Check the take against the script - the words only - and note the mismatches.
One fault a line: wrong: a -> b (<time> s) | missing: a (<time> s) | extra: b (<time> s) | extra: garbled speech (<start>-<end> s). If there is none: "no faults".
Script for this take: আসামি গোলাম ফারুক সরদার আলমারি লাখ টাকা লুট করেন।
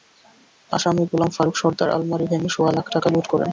extra: ভেঙে সোয়া (2.3 s)